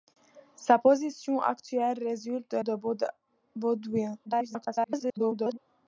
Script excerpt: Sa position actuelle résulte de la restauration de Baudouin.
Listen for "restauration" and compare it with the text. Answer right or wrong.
wrong